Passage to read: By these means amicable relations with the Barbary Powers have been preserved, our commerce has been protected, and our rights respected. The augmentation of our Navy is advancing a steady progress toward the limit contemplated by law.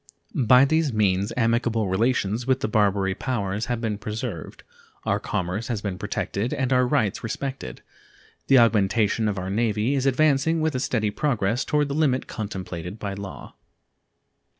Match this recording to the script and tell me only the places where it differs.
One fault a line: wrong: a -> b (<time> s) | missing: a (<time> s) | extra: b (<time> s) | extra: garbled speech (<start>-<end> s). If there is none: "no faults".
extra: with (10.6 s)